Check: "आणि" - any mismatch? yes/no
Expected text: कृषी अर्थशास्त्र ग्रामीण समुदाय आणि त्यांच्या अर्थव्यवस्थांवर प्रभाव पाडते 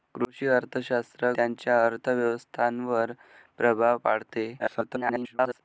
yes